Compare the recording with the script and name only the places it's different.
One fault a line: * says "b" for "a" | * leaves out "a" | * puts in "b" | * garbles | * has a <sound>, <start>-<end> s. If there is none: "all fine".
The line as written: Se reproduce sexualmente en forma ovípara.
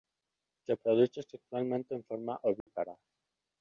* has a dropout, 2.6-2.7 s